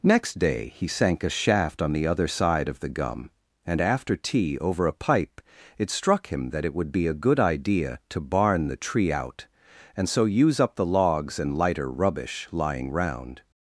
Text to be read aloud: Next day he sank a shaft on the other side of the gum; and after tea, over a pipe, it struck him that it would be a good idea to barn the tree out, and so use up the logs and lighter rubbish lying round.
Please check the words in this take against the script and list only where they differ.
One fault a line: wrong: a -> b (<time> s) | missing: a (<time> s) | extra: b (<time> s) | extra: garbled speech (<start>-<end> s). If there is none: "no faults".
no faults